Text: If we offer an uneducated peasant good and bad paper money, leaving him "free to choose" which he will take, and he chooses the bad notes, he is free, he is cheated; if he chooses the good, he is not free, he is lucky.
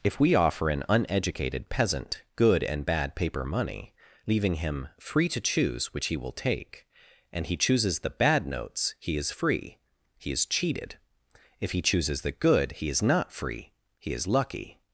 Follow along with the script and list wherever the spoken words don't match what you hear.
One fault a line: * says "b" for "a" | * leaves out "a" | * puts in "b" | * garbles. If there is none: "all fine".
all fine